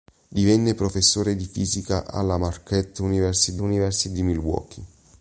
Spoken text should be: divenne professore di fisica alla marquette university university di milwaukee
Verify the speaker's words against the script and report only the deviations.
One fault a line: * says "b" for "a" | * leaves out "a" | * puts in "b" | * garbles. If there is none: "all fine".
all fine